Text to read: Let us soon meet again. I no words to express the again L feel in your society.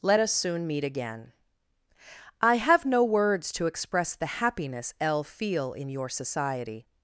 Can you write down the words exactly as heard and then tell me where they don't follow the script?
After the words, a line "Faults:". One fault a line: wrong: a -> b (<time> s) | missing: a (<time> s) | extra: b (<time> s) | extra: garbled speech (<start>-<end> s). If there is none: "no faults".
Let us soon meet again. I have no words to express the happiness L feel in your society.
Faults:
extra: have (2.6 s)
wrong: again -> happiness (4.4 s)